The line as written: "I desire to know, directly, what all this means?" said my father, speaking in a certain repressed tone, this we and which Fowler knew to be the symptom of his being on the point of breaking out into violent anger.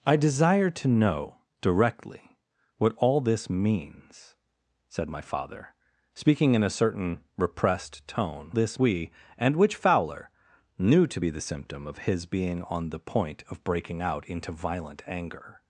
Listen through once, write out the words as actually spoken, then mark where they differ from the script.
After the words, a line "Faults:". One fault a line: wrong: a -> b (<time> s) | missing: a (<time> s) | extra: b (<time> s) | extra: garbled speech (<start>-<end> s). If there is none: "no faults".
"I desire to know, directly, what all this means?" said my father, speaking in a certain repressed tone, this we and which Fowler knew to be the symptom of his being on the point of breaking out into violent anger.
Faults:
no faults